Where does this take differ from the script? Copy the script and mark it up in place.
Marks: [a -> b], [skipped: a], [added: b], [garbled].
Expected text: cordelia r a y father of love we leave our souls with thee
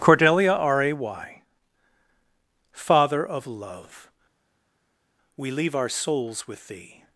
cordelia r a y father of love we leave our souls with thee